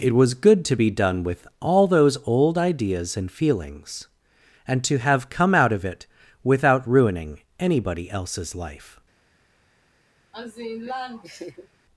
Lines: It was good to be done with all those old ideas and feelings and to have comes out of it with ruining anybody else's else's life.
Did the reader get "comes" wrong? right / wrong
wrong